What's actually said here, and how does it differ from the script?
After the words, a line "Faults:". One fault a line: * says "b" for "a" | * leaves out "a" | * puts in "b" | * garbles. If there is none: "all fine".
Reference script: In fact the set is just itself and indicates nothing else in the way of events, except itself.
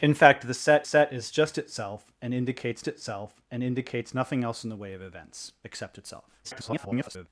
In fact the set set is just itself and indicates itself and indicates nothing else in the way of events, except itself. [garbled]
Faults:
* puts in "set"
* puts in "itself and indicates"
* garbles